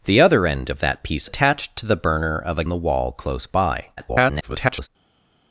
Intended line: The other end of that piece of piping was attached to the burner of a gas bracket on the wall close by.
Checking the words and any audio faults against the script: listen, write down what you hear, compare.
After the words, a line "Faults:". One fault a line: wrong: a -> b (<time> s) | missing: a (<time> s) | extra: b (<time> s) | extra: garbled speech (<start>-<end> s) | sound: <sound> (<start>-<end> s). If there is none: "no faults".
The other end of that piece attached to the burner of a the wall close by. [garbled]
Faults:
missing: of piping was (1.3 s)
missing: gas bracket on (2.6 s)
extra: garbled speech (4.0-4.9 s)